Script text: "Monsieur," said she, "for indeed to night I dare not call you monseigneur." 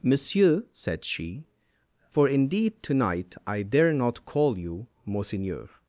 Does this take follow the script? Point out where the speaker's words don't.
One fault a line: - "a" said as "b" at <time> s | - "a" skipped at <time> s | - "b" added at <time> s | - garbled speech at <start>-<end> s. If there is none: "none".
none